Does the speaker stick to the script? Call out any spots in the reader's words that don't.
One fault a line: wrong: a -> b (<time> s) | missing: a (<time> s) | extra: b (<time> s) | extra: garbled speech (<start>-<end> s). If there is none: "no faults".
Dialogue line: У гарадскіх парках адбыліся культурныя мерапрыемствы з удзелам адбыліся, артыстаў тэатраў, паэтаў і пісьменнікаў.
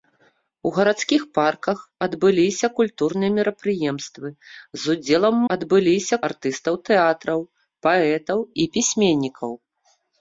no faults